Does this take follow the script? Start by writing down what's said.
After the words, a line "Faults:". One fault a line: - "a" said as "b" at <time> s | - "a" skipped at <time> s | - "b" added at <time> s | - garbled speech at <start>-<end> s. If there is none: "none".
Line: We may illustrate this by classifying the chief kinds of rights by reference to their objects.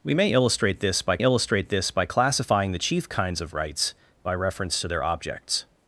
We may illustrate this by illustrate this by classifying the chief kinds of rights by reference to their objects.
Faults:
- "illustrate this by" added at 1.2 s